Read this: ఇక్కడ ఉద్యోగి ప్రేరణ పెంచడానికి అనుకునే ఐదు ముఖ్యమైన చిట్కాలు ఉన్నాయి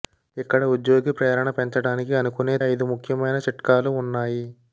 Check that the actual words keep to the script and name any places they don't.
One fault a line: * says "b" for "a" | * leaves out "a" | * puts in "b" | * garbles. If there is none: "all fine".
all fine